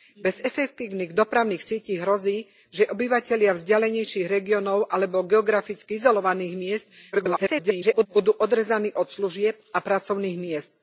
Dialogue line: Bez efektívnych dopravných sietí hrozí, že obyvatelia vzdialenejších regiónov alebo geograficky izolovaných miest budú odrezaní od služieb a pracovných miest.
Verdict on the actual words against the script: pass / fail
fail